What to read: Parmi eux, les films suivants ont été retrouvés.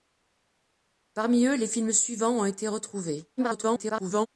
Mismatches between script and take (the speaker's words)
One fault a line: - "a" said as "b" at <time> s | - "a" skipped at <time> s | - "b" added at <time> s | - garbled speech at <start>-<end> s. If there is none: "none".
- garbled speech at 3.4-4.3 s